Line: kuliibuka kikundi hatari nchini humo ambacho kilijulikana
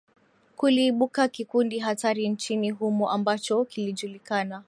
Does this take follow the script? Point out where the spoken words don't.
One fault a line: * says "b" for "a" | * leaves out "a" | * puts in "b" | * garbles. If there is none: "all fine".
all fine